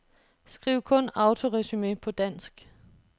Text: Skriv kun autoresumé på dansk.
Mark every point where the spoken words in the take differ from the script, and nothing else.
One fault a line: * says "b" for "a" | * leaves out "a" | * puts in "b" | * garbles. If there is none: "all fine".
all fine